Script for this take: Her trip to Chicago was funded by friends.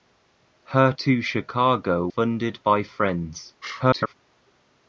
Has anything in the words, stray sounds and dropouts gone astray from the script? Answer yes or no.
yes